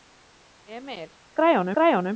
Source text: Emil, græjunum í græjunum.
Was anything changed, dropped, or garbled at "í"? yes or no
no